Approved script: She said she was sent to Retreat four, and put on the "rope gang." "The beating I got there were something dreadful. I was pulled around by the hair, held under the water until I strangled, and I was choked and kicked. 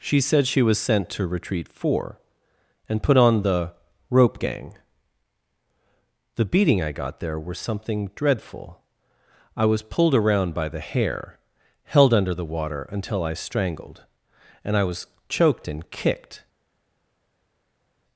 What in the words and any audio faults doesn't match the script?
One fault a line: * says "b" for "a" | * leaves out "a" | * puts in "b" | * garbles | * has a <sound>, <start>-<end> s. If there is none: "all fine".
all fine